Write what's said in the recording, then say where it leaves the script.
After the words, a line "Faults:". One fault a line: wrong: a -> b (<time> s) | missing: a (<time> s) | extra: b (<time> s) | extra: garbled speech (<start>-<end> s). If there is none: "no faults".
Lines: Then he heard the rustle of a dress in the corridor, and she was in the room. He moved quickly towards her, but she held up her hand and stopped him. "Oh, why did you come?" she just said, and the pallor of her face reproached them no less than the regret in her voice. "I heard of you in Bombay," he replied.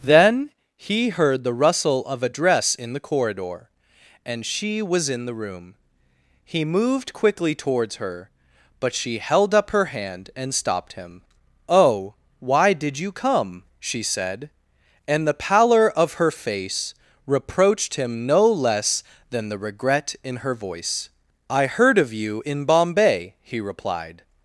Then he heard the rustle of a dress in the corridor, and she was in the room. He moved quickly towards her, but she held up her hand and stopped him. "Oh, why did you come?" she said, and the pallor of her face reproached him no less than the regret in her voice. "I heard of you in Bombay," he replied.
Faults:
missing: just (14.0 s)
wrong: them -> him (17.9 s)